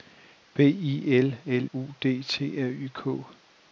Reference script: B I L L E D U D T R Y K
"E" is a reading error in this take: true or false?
true